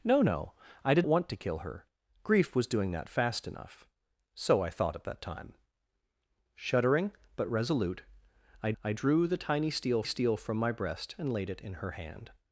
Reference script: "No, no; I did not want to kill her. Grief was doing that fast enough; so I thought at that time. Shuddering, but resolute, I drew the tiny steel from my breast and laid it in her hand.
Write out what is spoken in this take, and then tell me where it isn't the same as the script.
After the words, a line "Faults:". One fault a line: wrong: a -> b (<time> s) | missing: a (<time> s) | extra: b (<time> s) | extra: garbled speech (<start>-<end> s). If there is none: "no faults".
"No, no; I did want to kill her. Grief was doing that fast enough; so I thought at that time. Shuddering, but resolute, I I drew the tiny steel steel from my breast and laid it in her hand.
Faults:
missing: not (1.1 s)
extra: I (8.8 s)
extra: steel (10.0 s)